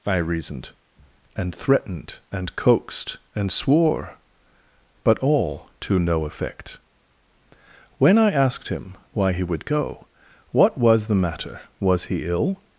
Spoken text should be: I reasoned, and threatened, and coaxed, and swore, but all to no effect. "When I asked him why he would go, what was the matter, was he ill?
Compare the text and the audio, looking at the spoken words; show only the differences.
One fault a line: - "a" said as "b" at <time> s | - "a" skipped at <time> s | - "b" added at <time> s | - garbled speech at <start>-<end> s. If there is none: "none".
none